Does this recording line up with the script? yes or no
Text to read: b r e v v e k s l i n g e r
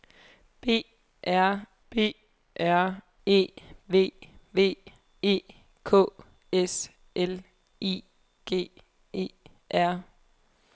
no